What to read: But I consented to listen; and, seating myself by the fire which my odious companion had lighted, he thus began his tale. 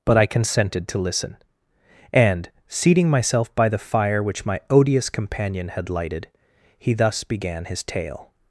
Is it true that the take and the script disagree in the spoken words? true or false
false